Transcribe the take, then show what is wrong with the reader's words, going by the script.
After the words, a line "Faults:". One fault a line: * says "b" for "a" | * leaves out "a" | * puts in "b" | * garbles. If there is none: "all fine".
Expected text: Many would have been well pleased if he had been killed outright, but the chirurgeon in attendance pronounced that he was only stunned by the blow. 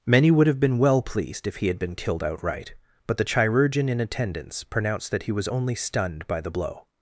Many would have been well pleased if he had been killed outright, but the chirurgeon in attendance pronounced that he was only stunned by the blow.
Faults:
all fine